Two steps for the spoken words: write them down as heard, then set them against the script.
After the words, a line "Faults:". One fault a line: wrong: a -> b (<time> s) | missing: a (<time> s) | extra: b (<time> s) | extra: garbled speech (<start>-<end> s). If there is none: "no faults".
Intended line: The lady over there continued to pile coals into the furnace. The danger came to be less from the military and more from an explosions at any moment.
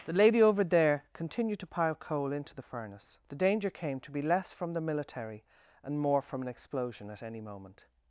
The lady over there continued to pile coal into the furnace. The danger came to be less from the military and more from an explosion at any moment.
Faults:
wrong: coals -> coal (1.9 s)
wrong: explosions -> explosion (6.5 s)